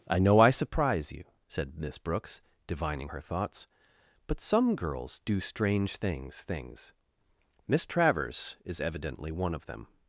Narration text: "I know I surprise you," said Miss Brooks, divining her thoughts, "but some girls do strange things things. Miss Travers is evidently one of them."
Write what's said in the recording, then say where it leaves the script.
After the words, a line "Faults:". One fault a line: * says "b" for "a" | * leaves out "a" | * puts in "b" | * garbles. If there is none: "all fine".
"I know I surprise you," said Miss Brooks, divining her thoughts, "but some girls do strange things things. Miss Travers is evidently one of them."
Faults:
all fine